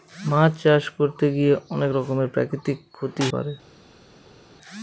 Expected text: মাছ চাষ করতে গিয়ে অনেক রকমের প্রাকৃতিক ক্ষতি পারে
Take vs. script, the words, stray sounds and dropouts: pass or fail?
pass